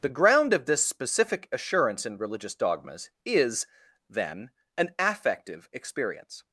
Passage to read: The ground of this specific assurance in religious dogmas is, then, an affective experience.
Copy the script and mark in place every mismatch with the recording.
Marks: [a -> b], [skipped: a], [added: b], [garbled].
The ground of this specific assurance in religious dogmas is, then, an affective experience.